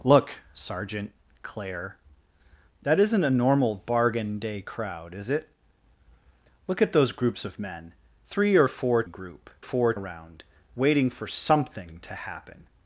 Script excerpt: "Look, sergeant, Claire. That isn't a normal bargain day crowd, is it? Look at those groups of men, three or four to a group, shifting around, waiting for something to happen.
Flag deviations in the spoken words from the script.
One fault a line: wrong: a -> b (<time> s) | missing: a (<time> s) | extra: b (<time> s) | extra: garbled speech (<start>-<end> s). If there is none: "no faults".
missing: to (9.0 s)
wrong: shifting -> four (9.6 s)